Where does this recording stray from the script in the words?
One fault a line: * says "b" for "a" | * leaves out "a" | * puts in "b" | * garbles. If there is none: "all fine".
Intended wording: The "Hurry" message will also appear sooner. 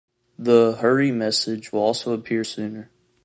all fine